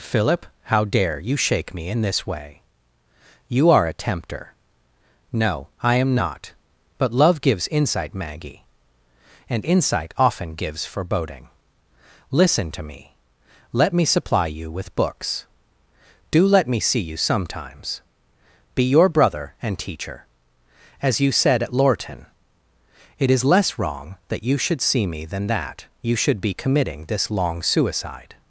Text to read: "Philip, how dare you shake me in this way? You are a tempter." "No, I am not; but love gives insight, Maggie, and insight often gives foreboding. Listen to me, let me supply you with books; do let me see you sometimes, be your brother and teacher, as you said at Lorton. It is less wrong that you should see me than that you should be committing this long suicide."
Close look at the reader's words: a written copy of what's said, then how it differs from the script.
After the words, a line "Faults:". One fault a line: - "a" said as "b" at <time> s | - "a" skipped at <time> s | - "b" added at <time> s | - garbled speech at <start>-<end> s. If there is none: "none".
"Philip, how dare you shake me in this way? You are a tempter." "No, I am not; but love gives insight, Maggie, and insight often gives foreboding. Listen to me, let me supply you with books; do let me see you sometimes, be your brother and teacher, as you said at Lorton. It is less wrong that you should see me than that you should be committing this long suicide."
Faults:
none